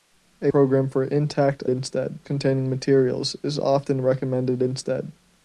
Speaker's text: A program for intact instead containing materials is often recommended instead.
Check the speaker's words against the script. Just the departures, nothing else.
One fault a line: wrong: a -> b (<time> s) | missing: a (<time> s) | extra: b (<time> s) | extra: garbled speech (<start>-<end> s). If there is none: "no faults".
no faults